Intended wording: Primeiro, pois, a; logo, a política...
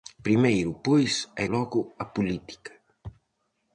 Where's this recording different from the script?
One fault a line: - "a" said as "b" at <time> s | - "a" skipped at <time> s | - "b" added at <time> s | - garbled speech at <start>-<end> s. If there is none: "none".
none